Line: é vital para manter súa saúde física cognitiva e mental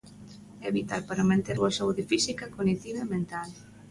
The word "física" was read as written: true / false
true